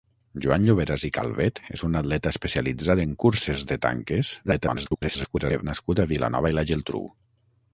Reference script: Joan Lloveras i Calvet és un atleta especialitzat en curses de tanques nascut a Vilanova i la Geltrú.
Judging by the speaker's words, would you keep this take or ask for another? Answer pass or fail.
fail